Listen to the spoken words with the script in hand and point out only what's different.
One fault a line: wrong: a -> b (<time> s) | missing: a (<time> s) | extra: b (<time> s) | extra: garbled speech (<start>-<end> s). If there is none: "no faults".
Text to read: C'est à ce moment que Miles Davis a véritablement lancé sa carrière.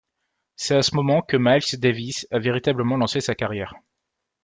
no faults